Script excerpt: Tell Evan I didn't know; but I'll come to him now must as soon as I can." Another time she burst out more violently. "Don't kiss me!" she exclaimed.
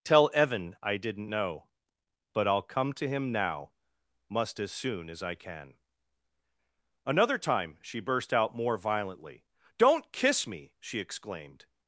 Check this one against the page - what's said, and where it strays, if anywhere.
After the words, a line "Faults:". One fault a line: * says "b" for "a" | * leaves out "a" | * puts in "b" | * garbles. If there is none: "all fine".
Tell Evan I didn't know; but I'll come to him now must as soon as I can." Another time she burst out more violently. "Don't kiss me!" she exclaimed.
Faults:
all fine